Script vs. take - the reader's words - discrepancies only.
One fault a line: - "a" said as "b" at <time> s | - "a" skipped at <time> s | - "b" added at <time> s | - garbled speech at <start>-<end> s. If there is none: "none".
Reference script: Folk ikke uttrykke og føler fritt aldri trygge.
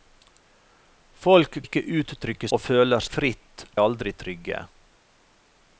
none